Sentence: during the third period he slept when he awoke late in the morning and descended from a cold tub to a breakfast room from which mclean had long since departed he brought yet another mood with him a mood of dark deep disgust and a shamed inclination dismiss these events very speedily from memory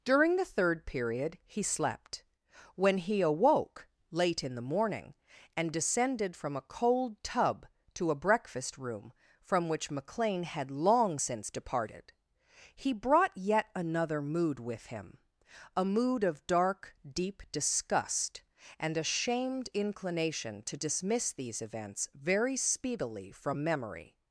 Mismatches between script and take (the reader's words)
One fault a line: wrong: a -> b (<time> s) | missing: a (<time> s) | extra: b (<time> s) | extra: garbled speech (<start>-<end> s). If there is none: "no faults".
extra: to (20.6 s)